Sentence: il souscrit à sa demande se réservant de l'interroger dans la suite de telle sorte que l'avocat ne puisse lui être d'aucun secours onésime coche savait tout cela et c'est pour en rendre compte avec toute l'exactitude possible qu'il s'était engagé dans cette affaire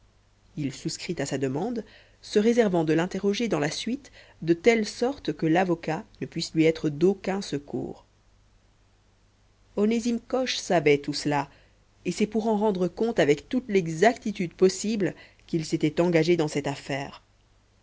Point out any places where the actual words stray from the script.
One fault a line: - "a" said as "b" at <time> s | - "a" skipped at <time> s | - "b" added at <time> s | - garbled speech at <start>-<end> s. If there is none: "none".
none